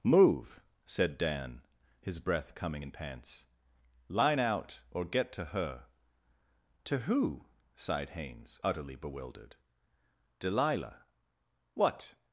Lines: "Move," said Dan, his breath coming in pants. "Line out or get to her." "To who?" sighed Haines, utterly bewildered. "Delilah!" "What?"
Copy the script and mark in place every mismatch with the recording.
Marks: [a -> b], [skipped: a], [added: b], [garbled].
"Move," said Dan, his breath coming in pants. "Line out or get to her." "To who?" sighed Haines, utterly bewildered. "Delilah!" "What?"